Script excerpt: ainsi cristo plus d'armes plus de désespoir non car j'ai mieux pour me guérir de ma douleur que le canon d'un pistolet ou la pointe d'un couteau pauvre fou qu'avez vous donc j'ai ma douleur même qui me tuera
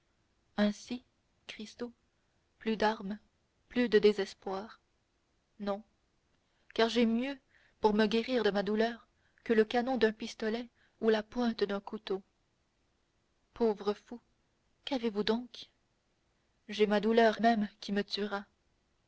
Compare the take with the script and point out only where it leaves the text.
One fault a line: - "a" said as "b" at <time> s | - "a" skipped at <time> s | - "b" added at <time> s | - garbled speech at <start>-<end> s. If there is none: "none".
none